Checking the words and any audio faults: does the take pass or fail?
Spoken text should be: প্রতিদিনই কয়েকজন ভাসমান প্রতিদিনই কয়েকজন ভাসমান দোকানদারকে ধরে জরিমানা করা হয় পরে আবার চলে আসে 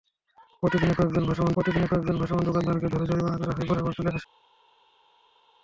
pass